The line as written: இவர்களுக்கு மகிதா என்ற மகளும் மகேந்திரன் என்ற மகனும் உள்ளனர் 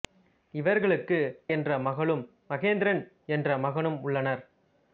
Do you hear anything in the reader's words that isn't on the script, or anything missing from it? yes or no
yes